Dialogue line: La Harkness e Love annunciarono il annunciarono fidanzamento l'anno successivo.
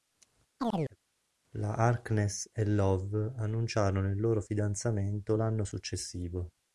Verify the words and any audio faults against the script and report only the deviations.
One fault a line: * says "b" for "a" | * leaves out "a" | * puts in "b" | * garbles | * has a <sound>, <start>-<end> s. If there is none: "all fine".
* has a chirp, 0.6-1.0 s
* says "loro" for "annunciarono"